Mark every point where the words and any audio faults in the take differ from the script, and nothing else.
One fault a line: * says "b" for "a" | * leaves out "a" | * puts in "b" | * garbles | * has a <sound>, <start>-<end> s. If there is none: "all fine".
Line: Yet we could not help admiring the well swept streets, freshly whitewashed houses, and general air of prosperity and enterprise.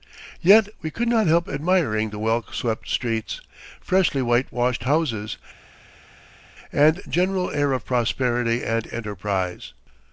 all fine